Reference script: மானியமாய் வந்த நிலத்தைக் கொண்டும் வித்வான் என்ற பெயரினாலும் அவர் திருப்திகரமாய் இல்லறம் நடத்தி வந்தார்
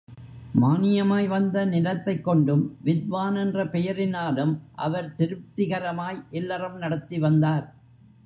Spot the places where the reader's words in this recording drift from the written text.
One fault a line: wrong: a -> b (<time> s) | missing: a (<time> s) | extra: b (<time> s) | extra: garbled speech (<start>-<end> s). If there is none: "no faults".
no faults